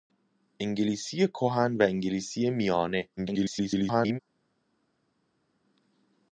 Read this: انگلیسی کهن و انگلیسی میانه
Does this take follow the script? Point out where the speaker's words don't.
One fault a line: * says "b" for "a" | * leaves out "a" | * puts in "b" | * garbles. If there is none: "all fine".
* garbles